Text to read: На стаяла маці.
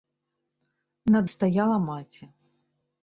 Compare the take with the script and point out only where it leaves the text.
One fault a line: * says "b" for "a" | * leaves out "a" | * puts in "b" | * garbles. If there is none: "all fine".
all fine